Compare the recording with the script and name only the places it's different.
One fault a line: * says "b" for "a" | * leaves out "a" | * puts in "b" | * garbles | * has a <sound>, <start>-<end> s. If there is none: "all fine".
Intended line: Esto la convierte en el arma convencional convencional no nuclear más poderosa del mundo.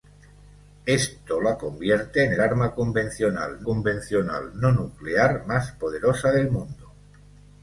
all fine